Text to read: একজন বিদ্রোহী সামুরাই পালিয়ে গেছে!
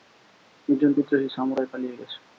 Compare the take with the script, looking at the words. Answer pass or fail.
pass